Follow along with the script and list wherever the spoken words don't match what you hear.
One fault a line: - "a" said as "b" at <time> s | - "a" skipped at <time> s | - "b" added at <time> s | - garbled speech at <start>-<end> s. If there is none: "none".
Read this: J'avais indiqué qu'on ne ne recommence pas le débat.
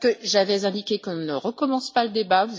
- "ne" skipped at 1.3 s